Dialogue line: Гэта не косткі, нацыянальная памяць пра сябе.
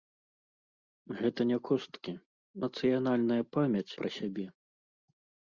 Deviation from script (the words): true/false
false